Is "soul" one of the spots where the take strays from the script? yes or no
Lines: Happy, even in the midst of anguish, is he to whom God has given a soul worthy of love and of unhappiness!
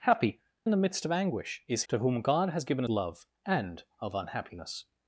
yes